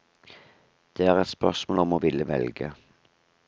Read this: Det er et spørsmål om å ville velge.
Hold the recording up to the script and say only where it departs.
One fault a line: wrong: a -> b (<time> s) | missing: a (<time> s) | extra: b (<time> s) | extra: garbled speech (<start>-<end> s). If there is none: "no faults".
no faults